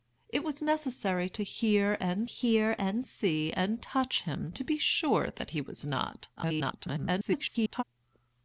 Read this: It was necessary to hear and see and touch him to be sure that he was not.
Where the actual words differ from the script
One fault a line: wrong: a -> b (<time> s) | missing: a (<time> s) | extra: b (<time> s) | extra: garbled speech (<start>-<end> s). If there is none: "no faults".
extra: hear and (2.3 s)
extra: garbled speech (6.4-7.8 s)